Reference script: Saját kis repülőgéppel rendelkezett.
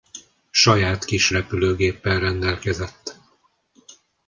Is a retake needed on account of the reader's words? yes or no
no